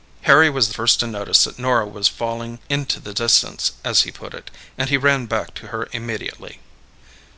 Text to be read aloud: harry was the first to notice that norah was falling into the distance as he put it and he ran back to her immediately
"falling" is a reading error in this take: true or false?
false